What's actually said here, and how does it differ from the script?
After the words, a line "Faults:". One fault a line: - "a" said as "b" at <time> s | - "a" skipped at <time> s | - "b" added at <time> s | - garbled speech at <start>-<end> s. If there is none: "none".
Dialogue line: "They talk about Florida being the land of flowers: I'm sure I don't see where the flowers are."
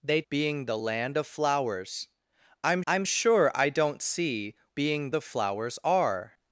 "They being the land of flowers: I'm I'm sure I don't see being the flowers are."
Faults:
- "talk about Florida" skipped at 0.2 s
- "I'm" added at 2.9 s
- "where" said as "being" at 4.7 s